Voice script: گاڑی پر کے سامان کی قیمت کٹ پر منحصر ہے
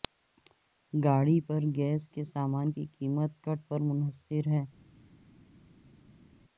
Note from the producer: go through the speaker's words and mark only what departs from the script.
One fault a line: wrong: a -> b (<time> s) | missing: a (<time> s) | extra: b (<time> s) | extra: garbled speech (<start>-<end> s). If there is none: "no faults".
extra: گیس (1.8 s)